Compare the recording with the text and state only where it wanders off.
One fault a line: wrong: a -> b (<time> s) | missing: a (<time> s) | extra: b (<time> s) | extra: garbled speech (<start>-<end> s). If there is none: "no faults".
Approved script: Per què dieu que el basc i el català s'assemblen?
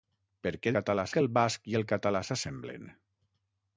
wrong: dieu -> català (0.8 s)